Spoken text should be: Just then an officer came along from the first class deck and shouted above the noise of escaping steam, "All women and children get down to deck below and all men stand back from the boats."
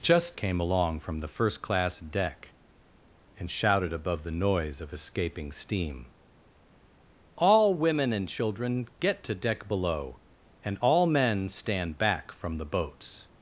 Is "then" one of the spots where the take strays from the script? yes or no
yes